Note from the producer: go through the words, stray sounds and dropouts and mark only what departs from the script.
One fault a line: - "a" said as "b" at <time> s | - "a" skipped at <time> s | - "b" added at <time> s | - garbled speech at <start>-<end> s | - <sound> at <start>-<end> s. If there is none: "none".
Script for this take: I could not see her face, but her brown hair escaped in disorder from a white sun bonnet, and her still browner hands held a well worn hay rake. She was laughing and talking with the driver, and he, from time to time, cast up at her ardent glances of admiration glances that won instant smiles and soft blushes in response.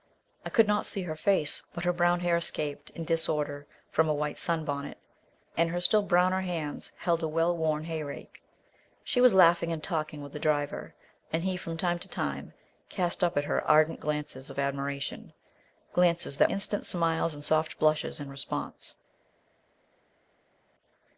- "won" skipped at 16.5 s